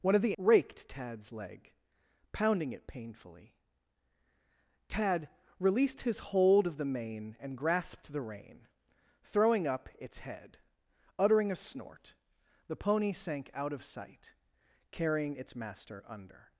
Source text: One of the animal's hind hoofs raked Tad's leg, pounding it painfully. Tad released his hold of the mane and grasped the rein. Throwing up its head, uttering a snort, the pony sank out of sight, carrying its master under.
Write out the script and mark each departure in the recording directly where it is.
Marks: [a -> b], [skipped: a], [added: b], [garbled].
One of the [skipped: animal's hind hoofs] raked Tad's leg, pounding it painfully. Tad released his hold of the mane and grasped the rein. Throwing up its head, uttering a snort, the pony sank out of sight, carrying its master under.